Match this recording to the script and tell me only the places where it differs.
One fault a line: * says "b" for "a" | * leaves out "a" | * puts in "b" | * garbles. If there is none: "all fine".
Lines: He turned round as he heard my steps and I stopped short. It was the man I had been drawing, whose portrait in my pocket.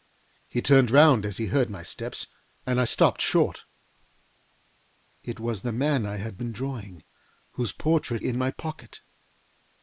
all fine